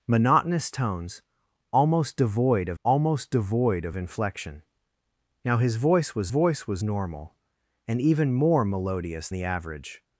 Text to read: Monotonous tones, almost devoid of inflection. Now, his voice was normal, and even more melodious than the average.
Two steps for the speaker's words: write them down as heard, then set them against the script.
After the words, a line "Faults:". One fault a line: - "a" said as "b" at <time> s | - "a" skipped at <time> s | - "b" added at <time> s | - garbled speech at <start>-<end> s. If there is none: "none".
Monotonous tones, almost devoid of almost devoid of inflection. Now, his voice was voice was normal, and even more melodious the average.
Faults:
- "almost devoid of" added at 2.8 s
- "voice was" added at 6.3 s
- "than" skipped at 9.3 s